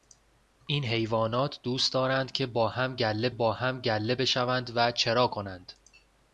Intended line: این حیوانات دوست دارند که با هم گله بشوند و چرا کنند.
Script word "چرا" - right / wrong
right